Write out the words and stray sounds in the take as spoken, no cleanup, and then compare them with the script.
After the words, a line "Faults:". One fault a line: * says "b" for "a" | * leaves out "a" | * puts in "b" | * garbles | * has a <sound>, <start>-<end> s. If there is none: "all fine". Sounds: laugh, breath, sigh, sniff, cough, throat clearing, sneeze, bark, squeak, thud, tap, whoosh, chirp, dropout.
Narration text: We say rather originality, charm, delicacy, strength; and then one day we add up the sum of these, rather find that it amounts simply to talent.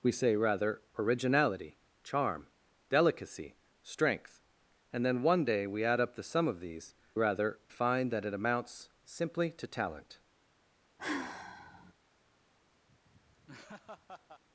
We say rather originality, charm, delicacy, strength; and then one day we add up the sum of these, rather find that it amounts simply to talent.
Faults:
* has a sigh, 11.0-11.9 s
* has a laugh, 12.9-14.4 s